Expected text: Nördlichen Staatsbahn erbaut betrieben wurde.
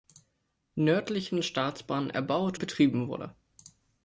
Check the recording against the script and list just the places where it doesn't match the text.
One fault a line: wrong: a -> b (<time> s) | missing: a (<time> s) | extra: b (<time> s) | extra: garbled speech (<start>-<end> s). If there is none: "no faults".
no faults